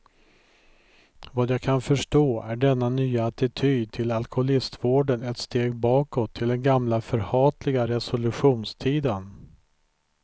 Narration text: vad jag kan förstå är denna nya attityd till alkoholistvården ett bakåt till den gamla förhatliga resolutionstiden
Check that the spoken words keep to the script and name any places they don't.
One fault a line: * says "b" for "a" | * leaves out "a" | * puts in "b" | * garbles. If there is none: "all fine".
* puts in "steg"